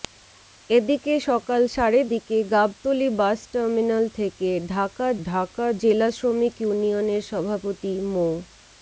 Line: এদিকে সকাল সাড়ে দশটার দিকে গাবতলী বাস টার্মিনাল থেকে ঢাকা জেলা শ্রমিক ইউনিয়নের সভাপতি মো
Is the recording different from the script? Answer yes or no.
yes